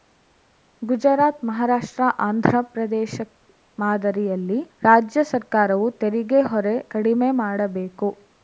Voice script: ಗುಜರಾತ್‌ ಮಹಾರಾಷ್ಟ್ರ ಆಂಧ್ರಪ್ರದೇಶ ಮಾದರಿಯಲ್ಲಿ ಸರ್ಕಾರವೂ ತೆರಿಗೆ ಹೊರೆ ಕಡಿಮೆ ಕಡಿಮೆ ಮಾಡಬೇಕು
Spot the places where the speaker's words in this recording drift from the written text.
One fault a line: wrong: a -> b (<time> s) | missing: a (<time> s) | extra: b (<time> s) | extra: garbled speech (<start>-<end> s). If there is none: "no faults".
extra: ರಾಜ್ಯ (4.8 s)
missing: ಕಡಿಮೆ (7.3 s)